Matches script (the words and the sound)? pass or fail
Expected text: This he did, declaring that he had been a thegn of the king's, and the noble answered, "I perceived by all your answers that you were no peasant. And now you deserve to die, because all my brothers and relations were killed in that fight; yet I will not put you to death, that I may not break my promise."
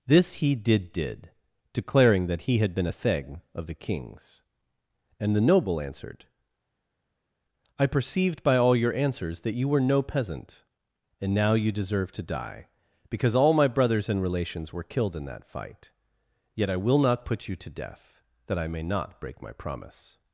fail